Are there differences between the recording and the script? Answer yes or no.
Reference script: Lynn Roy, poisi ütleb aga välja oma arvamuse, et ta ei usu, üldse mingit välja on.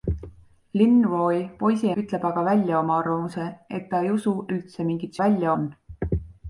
no